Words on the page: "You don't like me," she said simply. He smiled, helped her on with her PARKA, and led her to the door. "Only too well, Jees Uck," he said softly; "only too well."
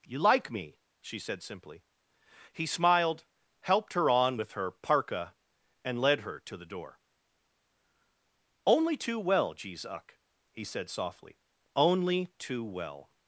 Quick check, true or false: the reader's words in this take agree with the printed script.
false